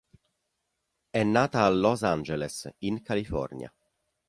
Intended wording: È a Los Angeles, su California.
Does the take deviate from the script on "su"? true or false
true